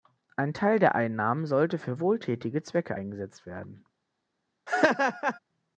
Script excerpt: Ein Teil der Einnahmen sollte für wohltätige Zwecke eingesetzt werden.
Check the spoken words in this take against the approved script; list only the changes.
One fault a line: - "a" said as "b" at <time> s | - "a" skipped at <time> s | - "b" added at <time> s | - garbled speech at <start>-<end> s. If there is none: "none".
none